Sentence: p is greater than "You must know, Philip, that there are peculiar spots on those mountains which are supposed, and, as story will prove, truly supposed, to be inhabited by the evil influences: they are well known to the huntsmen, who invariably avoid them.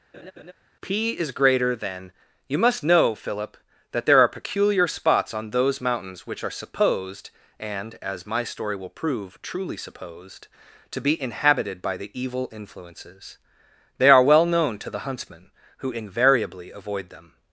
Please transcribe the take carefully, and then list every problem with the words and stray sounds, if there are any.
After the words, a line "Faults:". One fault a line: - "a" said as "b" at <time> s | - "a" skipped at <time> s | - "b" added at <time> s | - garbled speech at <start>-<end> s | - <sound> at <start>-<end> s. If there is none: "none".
p is greater than "You must know, Philip, that there are peculiar spots on those mountains which are supposed, and, as my story will prove, truly supposed, to be inhabited by the evil influences: they are well known to the huntsmen, who invariably avoid them.
Faults:
- laugh at 0.1-0.5 s
- "my" added at 8.2 s